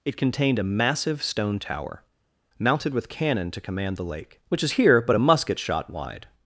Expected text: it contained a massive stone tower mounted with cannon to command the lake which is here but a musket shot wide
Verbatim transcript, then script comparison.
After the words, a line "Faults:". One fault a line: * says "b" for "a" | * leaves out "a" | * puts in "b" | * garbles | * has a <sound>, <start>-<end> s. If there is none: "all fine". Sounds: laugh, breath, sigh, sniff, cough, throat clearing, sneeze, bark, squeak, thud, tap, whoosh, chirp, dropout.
it contained a massive stone tower mounted with cannon to command the lake which is here but a musket shot wide
Faults:
all fine